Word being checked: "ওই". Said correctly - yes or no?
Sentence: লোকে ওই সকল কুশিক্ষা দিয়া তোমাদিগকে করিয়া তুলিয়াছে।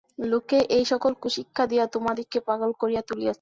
no